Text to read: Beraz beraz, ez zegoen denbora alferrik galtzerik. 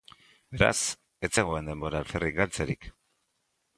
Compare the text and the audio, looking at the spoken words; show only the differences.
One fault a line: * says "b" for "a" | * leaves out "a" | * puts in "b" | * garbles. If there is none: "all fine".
* leaves out "beraz"